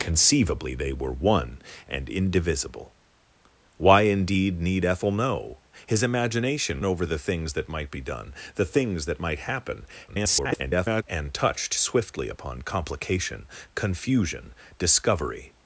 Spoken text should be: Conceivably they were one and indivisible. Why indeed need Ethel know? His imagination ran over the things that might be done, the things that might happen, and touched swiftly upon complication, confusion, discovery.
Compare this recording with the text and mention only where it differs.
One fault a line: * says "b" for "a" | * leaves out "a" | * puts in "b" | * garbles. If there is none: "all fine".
* leaves out "ran"
* garbles